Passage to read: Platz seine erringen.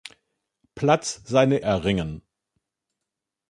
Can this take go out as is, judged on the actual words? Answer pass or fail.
pass